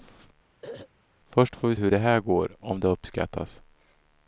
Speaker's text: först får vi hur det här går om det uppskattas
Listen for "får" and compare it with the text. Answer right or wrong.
right